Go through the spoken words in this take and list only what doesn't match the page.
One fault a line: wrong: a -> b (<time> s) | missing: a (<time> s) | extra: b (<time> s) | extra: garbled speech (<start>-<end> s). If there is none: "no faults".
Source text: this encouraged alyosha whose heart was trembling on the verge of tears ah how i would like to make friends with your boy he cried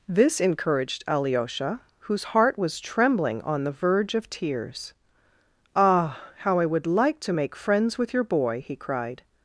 no faults